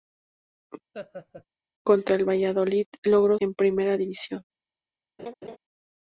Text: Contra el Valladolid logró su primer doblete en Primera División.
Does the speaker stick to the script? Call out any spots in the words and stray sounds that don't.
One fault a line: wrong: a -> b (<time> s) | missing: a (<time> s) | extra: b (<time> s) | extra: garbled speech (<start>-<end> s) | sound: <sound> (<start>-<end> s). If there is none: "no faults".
sound: laugh (0.9-1.5 s)
missing: su primer doblete (3.4 s)
sound: laugh (5.2-5.6 s)